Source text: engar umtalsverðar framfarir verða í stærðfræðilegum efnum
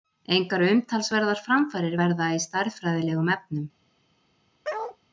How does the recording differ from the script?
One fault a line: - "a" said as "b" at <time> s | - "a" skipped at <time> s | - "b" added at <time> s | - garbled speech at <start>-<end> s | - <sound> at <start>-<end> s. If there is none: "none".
- bark at 4.6-5.0 s